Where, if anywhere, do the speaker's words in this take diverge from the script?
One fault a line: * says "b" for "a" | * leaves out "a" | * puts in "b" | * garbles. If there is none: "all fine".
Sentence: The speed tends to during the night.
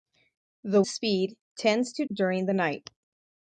all fine